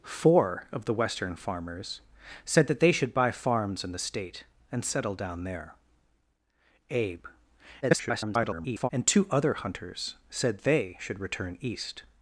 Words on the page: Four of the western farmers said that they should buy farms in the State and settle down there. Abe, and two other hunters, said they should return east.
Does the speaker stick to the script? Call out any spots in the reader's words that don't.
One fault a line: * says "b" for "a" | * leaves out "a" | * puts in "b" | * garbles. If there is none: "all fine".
* garbles